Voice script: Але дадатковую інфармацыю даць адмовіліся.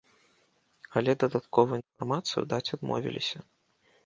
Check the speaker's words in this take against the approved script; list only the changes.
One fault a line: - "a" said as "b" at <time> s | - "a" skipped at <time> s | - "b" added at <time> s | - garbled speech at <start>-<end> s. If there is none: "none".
none